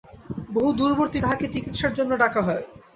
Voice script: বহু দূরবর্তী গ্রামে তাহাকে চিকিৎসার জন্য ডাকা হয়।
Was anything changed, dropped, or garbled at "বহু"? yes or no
no